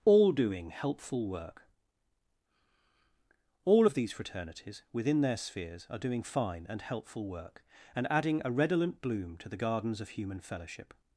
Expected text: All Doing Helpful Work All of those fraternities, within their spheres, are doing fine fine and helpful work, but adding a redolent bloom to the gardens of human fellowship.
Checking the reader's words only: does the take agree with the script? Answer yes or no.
no